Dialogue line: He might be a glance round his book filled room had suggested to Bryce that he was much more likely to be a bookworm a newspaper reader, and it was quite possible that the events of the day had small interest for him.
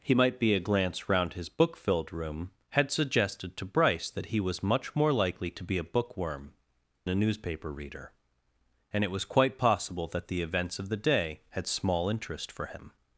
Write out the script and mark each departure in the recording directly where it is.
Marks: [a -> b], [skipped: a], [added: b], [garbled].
He might be a glance round his book filled room had suggested to Bryce that he was much more likely to be a bookworm a newspaper reader, and it was quite possible that the events of the day had small interest for him.